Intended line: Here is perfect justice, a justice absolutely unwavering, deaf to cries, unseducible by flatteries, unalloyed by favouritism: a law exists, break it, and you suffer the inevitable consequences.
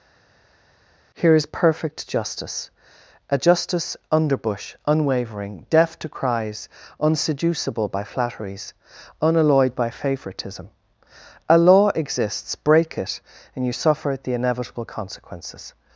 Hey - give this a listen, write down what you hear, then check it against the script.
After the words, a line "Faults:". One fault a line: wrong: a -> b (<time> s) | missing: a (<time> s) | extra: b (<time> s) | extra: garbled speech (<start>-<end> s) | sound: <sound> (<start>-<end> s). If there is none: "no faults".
Here is perfect justice, a justice underbush unwavering, deaf to cries, unseducible by flatteries, unalloyed by favouritism: a law exists, break it, and you suffer the inevitable consequences.
Faults:
wrong: absolutely -> underbush (4.1 s)